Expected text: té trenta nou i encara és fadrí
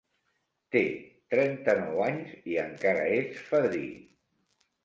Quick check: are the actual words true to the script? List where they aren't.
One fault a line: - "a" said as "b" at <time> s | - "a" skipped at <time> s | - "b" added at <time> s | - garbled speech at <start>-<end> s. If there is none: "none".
- "anys" added at 2.1 s